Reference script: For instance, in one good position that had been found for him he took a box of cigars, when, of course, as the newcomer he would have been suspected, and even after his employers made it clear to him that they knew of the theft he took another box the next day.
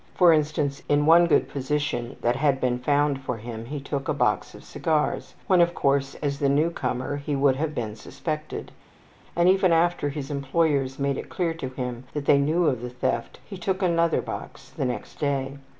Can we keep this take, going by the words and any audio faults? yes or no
yes